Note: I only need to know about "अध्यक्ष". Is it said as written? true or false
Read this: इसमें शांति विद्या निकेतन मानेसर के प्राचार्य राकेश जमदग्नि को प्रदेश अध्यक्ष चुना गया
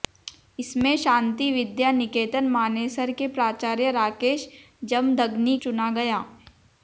false